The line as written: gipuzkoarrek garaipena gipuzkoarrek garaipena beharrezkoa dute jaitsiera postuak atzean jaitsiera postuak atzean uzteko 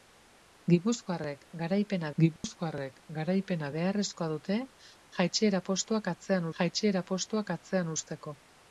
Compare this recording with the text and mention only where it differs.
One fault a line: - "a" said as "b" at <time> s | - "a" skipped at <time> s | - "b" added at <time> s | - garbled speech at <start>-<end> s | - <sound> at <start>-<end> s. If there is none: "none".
- dropout at 2.4-2.4 s